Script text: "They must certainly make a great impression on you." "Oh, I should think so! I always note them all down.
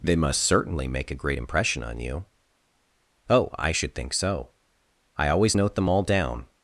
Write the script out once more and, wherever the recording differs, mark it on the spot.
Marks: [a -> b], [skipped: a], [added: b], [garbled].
"They must certainly make a great impression on you." "Oh, I should think so! I always note them all down.